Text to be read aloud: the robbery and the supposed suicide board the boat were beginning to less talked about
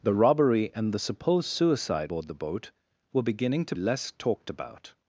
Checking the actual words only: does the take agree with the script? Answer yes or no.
yes